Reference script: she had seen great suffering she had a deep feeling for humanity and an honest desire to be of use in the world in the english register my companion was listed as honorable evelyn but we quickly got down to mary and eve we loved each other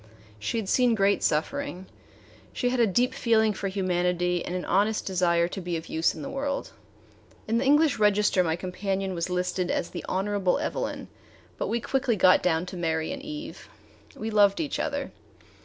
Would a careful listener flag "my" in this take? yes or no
no